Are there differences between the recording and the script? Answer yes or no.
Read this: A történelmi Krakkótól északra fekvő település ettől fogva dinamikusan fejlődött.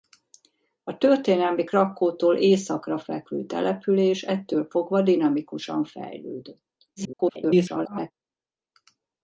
yes